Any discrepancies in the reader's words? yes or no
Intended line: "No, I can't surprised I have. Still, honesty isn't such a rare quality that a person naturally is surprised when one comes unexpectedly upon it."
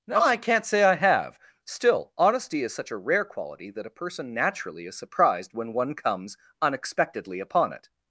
yes